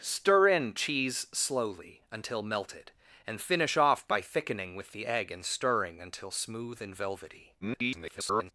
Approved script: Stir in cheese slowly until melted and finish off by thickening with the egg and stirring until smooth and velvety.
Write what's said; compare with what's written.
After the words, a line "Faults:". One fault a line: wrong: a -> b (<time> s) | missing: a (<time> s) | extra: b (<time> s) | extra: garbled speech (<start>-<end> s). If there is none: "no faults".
Stir in cheese slowly until melted and finish off by thickening with the egg and stirring until smooth and velvety. [garbled]
Faults:
extra: garbled speech (7.6-8.5 s)